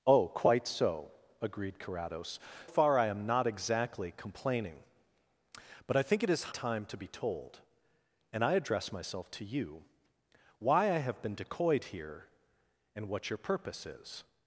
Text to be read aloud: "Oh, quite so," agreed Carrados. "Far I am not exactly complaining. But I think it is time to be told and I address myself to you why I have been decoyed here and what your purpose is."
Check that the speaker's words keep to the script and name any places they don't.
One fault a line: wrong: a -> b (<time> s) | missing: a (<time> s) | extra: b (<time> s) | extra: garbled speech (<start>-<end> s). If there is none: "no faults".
no faults